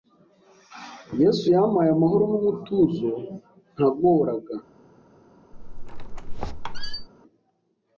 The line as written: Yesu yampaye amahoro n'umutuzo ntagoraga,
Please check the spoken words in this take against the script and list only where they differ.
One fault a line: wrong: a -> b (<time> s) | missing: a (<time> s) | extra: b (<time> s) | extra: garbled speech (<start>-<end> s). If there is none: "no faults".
no faults